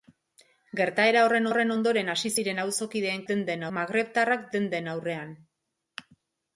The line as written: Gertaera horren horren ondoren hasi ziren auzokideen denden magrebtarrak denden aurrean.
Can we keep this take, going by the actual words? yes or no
yes